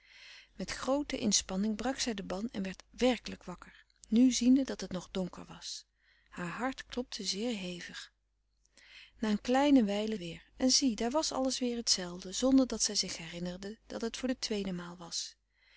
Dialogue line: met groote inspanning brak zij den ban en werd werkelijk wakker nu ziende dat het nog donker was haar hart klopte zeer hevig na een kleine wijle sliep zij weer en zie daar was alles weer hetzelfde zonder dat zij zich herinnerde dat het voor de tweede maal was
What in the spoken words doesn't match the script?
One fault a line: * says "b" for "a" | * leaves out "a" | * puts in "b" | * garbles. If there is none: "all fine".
* leaves out "sliep zij"